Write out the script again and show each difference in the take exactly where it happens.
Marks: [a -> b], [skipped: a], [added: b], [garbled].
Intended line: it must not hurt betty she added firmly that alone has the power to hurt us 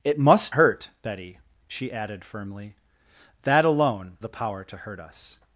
it must [skipped: not] hurt betty she added firmly that alone [skipped: has] the power to hurt us